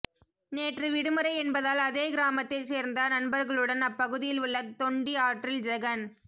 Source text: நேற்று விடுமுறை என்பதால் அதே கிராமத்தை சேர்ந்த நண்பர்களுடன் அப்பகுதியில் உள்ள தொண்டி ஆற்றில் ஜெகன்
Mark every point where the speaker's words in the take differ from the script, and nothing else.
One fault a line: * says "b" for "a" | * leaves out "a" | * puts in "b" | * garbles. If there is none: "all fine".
all fine